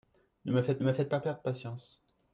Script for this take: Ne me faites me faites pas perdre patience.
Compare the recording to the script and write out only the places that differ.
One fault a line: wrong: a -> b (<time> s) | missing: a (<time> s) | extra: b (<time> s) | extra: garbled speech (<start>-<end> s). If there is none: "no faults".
no faults